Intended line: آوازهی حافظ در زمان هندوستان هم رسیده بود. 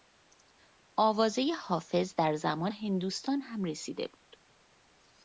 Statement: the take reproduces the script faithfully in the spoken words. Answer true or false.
true